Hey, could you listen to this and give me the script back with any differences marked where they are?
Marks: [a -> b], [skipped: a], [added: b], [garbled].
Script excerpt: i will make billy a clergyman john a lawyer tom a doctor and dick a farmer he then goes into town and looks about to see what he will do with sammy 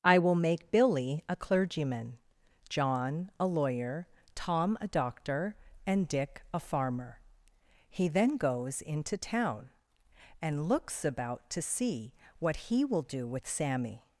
i will make billy a clergyman john a lawyer tom a doctor and dick a farmer he then goes into town and looks about to see what he will do with sammy